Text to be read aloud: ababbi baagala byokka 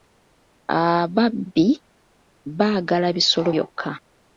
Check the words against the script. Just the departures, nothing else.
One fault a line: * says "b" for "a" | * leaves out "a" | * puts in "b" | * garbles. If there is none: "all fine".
* puts in "bisolo"